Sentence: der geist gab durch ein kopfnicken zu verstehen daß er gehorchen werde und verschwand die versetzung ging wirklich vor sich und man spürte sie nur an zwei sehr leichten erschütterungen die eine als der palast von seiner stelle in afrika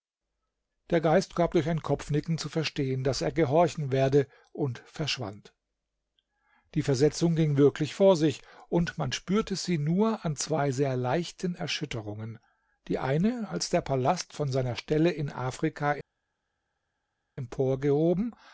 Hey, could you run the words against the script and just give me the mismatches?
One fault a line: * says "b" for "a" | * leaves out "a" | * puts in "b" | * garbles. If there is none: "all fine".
all fine